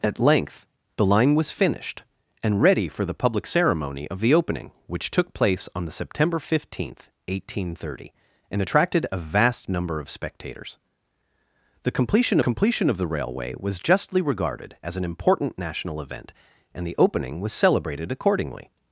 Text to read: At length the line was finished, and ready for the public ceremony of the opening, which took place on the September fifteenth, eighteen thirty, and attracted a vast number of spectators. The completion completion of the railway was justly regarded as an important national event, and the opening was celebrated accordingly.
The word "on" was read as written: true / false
true